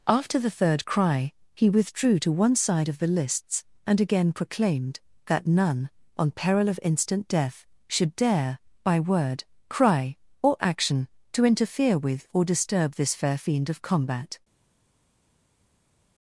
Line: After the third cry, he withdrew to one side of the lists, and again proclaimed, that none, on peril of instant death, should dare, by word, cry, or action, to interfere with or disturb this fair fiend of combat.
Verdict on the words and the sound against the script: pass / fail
pass